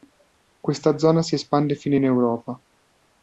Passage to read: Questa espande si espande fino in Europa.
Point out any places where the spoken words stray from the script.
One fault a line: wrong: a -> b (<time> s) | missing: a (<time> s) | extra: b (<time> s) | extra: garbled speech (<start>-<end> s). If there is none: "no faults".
wrong: espande -> zona (1.0 s)